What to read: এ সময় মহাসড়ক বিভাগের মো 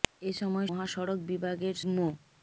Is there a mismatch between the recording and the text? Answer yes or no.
no